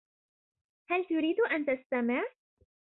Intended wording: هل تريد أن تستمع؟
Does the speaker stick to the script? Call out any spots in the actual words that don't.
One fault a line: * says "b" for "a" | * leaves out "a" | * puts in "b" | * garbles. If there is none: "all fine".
all fine